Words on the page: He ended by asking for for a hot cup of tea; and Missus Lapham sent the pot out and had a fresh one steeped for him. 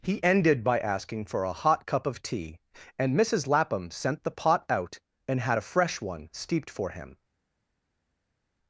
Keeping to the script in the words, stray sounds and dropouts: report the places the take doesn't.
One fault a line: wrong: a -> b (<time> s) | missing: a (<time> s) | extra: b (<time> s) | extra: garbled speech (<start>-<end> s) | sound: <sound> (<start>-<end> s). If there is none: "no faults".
missing: for (1.4 s)